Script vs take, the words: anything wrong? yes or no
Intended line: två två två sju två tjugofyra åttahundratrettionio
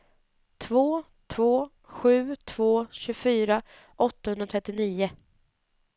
yes